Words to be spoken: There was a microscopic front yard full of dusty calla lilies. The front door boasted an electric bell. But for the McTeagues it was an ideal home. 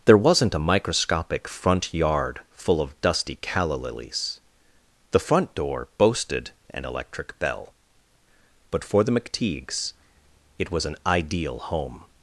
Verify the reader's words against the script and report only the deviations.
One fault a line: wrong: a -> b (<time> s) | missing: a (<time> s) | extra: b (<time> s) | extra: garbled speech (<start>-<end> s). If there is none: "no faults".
wrong: was -> wasn't (0.2 s)